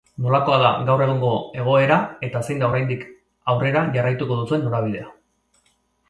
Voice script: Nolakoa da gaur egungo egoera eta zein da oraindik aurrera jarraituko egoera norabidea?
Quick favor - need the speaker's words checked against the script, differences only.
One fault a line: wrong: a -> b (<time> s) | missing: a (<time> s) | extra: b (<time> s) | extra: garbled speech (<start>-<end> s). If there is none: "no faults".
wrong: egoera -> duzuen (4.4 s)